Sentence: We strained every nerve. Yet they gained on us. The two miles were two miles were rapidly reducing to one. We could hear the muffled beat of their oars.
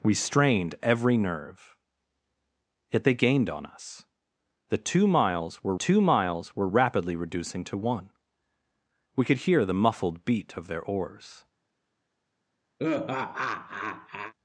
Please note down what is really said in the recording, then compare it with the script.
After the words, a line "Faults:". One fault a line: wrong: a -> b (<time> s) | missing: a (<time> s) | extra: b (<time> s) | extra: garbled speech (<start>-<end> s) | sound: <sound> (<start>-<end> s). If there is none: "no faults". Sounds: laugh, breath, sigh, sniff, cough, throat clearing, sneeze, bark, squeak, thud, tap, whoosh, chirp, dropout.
We strained every nerve. Yet they gained on us. The two miles were two miles were rapidly reducing to one. We could hear the muffled beat of their oars.
Faults:
sound: laugh (12.8-14.3 s)